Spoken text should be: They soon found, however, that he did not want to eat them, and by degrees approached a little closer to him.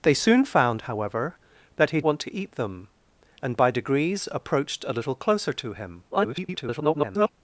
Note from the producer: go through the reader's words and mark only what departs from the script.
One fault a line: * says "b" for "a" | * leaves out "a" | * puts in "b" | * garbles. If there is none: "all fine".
* leaves out "did not"
* garbles